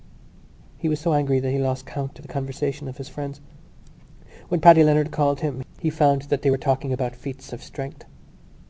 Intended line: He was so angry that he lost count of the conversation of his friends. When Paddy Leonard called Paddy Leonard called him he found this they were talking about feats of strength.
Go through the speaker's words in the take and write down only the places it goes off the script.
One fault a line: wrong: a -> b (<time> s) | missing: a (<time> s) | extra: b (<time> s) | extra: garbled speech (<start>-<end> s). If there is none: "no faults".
missing: Paddy Leonard called (5.4 s)
wrong: this -> that (6.3 s)